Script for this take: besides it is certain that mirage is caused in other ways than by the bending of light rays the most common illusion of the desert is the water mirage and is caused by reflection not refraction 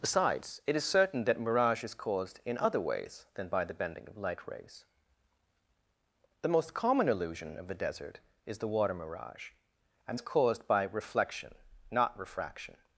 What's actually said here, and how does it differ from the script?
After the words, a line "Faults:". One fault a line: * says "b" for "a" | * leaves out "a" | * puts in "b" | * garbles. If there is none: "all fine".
besides it is certain that mirage is caused in other ways than by the bending of light rays the most common illusion of the desert is the water mirage and is caused by reflection not refraction
Faults:
all fine